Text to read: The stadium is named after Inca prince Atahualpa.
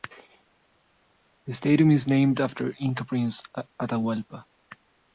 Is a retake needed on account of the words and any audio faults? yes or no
no